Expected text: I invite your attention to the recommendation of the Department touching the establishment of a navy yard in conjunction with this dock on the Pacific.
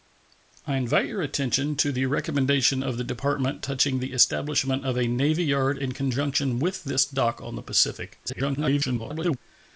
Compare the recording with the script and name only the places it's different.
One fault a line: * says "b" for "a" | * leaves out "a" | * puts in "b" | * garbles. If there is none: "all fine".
* garbles